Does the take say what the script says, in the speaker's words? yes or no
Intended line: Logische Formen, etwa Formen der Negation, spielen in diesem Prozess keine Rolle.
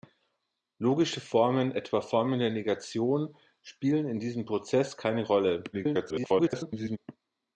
no